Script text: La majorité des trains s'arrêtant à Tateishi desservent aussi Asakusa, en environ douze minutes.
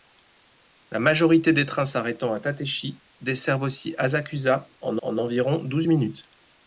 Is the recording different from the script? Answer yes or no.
yes